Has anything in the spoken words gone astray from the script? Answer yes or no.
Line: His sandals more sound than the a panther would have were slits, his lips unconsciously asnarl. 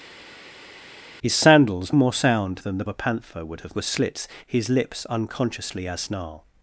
no